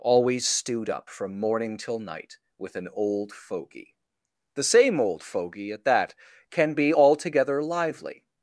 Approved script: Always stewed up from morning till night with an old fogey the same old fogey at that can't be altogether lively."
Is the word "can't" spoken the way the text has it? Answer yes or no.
no